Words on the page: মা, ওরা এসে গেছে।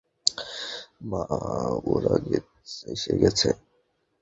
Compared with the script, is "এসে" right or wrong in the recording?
right